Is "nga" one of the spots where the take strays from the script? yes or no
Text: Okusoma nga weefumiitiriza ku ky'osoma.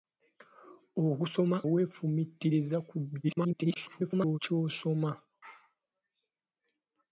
yes